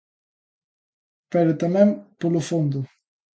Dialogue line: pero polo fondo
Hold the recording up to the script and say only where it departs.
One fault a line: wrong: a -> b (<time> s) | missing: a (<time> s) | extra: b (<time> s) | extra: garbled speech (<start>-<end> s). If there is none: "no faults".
extra: tamén (1.6 s)